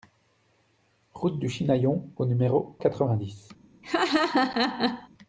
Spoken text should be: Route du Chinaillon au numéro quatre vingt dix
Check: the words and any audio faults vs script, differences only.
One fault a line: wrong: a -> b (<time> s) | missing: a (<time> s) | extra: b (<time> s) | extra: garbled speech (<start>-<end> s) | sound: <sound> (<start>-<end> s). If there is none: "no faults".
sound: laugh (3.8-5.1 s)